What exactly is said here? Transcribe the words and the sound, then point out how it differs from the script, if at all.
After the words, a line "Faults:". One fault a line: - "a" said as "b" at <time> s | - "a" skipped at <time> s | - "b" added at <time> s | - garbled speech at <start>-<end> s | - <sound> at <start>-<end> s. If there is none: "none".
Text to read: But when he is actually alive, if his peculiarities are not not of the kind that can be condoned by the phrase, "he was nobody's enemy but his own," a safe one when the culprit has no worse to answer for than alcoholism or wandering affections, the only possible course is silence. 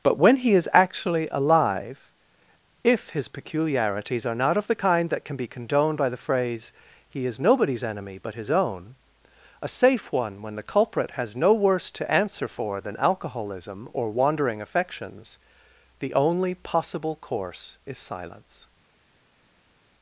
But when he is actually alive, if his peculiarities are not of the kind that can be condoned by the phrase, "he is nobody's enemy but his own," a safe one when the culprit has no worse to answer for than alcoholism or wandering affections, the only possible course is silence.
Faults:
- "not" skipped at 4.6 s
- "was" said as "is" at 7.3 s